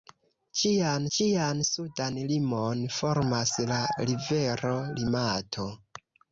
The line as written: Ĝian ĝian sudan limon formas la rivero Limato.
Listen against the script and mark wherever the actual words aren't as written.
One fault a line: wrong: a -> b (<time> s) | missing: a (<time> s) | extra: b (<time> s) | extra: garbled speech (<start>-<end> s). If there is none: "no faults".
no faults